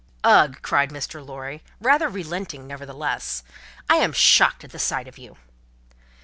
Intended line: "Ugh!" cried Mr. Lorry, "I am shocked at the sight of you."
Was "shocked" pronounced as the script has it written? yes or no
yes